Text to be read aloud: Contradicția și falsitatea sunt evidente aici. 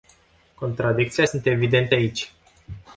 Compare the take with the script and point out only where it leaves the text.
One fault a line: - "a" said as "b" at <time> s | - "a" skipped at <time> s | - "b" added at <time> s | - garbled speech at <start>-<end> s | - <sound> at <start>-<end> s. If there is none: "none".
- "și falsitatea" skipped at 1.2 s